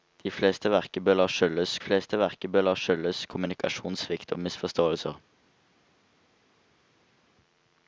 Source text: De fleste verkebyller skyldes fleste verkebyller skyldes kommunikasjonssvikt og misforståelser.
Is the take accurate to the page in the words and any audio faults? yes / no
yes